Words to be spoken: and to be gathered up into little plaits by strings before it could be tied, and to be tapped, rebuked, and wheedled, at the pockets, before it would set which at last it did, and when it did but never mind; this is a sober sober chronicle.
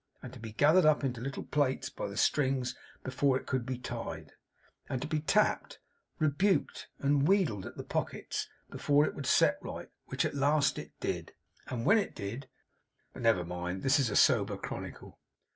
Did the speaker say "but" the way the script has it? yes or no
yes